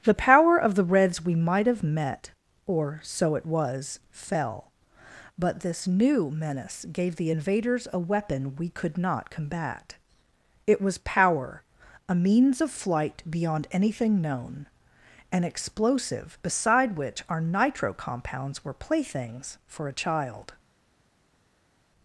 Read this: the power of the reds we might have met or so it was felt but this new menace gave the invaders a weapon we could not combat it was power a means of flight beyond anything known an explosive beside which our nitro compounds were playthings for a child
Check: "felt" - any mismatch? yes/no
yes